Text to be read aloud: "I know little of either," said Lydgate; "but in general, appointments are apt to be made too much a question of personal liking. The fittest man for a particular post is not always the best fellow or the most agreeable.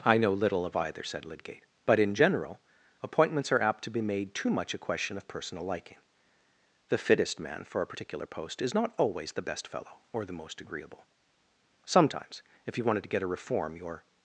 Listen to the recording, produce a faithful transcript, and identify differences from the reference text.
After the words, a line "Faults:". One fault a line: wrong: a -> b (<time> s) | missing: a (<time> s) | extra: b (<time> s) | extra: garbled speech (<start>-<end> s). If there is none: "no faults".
"I know little of either," said Lydgate; "but in general, appointments are apt to be made too much a question of personal liking. The fittest man for a particular post is not always the best fellow or the most agreeable. Sometimes, if you wanted to get a reform, your
Faults:
extra: Sometimes if you wanted to get a reform your (11.9 s)